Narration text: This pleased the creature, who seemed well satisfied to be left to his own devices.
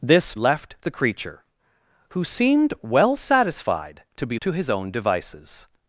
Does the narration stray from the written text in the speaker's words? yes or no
yes